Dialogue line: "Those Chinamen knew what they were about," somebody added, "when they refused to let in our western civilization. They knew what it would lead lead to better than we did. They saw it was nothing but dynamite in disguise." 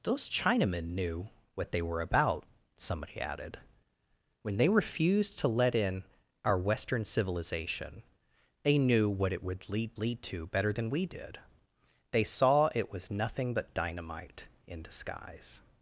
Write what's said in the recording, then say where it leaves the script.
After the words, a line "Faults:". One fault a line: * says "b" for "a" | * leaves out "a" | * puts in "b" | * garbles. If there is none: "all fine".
"Those Chinamen knew what they were about," somebody added, "when they refused to let in our western civilization. They knew what it would lead lead to better than we did. They saw it was nothing but dynamite in disguise."
Faults:
all fine